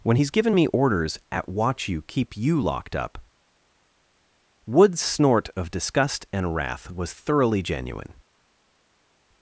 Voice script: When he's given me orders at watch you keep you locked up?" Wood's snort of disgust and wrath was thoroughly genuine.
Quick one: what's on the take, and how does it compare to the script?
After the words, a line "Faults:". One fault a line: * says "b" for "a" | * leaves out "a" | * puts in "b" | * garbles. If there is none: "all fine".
When he's given me orders at watch you keep you locked up?" Wood's snort of disgust and wrath was thoroughly genuine.
Faults:
all fine